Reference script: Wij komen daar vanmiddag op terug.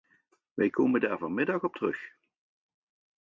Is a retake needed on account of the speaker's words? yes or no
no